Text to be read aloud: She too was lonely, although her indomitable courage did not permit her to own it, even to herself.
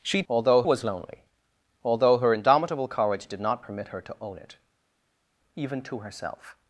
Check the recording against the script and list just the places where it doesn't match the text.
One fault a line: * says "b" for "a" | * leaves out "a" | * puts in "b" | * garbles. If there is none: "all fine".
* says "although" for "too"